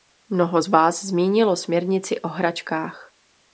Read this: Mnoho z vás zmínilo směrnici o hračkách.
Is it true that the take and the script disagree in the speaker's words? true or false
false